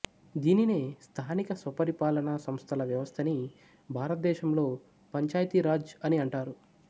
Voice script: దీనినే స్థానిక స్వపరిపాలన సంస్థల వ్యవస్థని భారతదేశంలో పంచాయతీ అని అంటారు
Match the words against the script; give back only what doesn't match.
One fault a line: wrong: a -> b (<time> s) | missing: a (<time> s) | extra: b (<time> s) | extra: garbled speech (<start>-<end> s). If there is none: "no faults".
extra: రాజ్ (5.7 s)